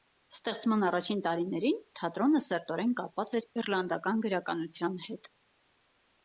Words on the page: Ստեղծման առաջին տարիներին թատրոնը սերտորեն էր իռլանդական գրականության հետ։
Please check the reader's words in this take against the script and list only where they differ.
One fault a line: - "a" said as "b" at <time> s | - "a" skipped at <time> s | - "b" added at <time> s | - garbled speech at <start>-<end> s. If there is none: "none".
- "կապված" added at 3.0 s